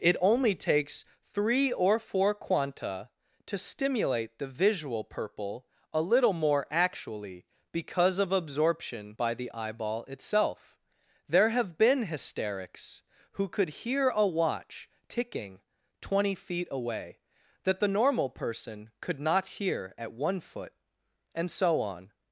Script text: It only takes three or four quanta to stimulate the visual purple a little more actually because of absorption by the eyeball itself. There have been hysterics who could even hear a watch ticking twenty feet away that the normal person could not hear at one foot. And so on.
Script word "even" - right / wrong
wrong